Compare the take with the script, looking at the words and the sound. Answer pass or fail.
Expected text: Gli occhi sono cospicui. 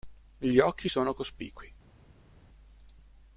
pass